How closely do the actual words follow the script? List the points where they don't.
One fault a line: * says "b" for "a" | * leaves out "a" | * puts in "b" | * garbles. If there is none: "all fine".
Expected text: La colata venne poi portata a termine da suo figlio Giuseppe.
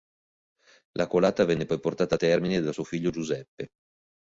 all fine